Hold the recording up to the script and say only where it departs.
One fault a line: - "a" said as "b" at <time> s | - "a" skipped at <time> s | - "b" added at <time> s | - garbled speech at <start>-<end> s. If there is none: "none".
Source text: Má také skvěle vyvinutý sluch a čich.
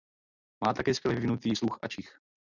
none